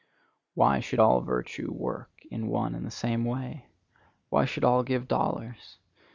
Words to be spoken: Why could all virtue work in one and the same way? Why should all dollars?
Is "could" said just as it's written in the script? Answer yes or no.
no